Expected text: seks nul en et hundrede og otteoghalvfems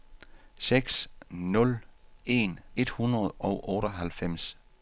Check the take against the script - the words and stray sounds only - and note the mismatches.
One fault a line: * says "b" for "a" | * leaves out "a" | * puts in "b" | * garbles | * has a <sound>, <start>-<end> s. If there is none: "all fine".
all fine